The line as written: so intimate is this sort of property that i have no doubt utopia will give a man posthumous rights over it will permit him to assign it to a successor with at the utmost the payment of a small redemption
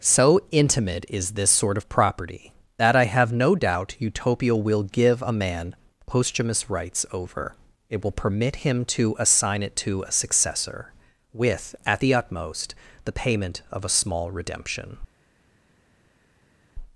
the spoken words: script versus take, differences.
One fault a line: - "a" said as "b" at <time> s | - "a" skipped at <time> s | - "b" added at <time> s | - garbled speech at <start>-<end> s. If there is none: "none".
none